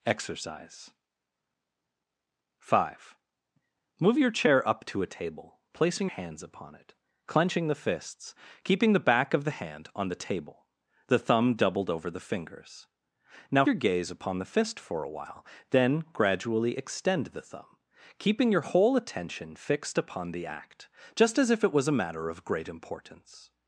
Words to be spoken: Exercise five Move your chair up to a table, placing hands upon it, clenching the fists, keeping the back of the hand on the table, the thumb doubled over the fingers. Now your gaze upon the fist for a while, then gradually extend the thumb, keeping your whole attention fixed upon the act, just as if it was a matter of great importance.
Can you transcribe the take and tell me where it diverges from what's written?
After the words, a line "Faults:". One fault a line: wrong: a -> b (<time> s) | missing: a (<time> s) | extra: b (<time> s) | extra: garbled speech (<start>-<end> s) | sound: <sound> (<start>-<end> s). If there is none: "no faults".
Exercise five Move your chair up to a table, placing hands upon it, clenching the fists, keeping the back of the hand on the table, the thumb doubled over the fingers. Now your gaze upon the fist for a while, then gradually extend the thumb, keeping your whole attention fixed upon the act, just as if it was a matter of great importance.
Faults:
no faults